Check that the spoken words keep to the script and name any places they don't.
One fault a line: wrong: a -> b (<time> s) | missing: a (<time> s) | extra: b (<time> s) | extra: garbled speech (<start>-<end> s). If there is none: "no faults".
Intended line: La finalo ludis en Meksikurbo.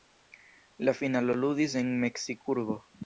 no faults